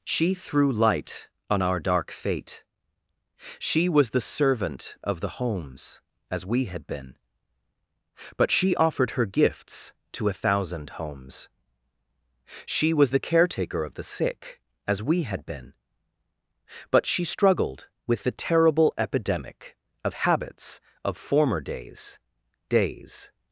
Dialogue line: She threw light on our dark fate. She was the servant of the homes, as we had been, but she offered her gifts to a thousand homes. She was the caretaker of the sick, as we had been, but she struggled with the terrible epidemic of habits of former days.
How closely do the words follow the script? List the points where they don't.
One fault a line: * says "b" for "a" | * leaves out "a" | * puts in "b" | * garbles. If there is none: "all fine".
* puts in "days"